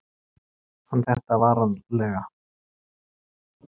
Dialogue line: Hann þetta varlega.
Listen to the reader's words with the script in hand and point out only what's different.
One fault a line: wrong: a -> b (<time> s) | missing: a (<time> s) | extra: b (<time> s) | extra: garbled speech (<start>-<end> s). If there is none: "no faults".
no faults